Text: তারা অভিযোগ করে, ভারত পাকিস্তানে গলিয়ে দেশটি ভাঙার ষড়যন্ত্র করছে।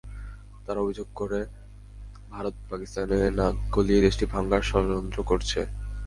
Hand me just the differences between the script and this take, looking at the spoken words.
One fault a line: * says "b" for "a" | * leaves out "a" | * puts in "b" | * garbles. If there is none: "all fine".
* puts in "নাক"